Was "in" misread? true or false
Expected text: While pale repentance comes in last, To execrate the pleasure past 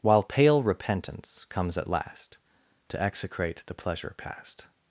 true